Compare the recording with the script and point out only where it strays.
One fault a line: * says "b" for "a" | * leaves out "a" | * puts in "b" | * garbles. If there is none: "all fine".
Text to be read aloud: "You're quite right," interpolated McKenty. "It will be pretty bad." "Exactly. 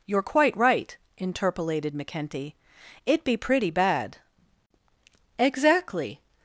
* leaves out "will"